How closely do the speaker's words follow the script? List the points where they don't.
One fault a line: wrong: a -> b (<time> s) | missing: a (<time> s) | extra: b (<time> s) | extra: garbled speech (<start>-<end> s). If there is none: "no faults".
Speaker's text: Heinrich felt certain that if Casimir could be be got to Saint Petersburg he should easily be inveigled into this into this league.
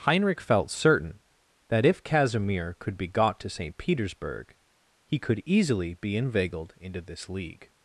missing: be (3.1 s)
wrong: should -> could (5.2 s)
missing: into this (7.3 s)